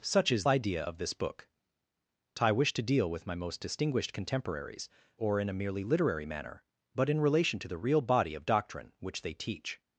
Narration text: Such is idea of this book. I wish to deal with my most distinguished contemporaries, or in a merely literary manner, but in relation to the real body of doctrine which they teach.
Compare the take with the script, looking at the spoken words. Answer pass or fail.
pass